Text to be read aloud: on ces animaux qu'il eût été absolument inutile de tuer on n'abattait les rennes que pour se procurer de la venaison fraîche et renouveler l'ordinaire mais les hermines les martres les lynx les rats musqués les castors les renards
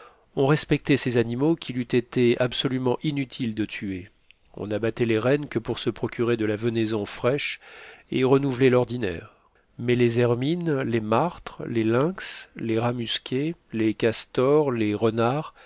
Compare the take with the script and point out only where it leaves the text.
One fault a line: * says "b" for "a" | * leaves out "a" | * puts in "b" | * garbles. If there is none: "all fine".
* puts in "respectait"